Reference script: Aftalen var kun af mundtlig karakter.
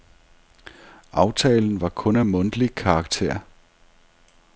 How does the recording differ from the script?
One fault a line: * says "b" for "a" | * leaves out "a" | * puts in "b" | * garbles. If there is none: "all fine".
all fine